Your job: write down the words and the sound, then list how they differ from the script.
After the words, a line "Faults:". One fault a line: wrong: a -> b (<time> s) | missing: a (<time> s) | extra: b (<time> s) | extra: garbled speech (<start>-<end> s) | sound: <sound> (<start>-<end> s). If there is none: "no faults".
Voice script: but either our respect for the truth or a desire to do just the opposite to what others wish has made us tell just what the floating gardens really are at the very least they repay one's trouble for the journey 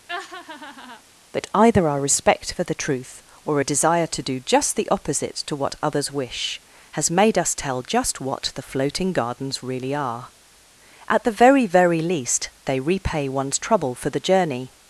but either our respect for the truth or a desire to do just the opposite to what others wish has made us tell just what the floating gardens really are at the very very least they repay one's trouble for the journey
Faults:
sound: laugh (0.1-1.0 s)
extra: very (11.7 s)